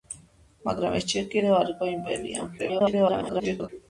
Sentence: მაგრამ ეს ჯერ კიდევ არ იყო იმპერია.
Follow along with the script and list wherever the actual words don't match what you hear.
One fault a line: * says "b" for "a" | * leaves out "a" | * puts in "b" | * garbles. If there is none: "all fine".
* garbles